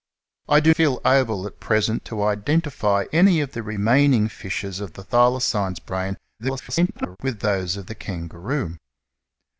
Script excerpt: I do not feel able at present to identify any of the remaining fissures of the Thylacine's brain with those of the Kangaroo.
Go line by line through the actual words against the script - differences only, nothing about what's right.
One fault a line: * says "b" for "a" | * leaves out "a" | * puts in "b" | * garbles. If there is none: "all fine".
* leaves out "not"
* garbles